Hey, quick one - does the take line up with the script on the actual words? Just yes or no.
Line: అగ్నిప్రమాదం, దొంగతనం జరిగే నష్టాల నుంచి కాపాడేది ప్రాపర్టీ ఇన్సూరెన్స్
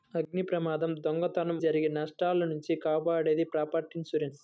yes